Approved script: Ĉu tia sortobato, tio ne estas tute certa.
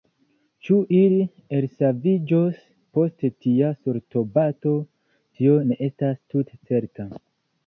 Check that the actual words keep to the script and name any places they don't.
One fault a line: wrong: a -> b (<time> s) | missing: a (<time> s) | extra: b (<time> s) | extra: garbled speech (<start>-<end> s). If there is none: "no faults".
extra: ili elsaviĝos post (1.0 s)